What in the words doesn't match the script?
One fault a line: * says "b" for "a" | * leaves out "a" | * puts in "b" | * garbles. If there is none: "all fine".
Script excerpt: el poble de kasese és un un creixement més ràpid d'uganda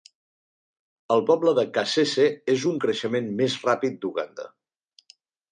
all fine